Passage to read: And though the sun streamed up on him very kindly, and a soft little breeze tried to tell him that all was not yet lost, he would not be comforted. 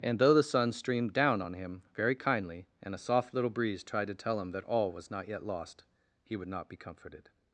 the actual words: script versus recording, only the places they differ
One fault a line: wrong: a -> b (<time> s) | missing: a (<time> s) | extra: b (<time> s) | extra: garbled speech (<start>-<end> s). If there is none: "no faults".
wrong: up -> down (1.1 s)